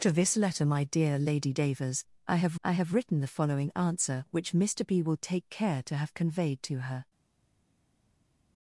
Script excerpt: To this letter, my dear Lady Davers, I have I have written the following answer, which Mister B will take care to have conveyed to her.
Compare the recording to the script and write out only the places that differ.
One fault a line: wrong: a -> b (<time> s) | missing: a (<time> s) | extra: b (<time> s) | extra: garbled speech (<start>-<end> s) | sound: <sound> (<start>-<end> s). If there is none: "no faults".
no faults